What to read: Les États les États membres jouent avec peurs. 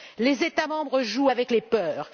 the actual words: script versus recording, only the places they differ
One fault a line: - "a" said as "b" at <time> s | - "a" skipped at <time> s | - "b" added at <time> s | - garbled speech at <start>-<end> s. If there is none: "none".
- "les États" skipped at 0.7 s
- "les" added at 1.5 s